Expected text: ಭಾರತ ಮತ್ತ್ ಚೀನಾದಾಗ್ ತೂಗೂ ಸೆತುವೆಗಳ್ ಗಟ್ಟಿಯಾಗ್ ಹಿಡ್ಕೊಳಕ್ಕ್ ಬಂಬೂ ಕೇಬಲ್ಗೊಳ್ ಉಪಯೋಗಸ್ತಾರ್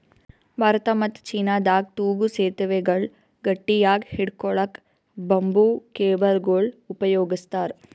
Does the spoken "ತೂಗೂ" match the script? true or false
true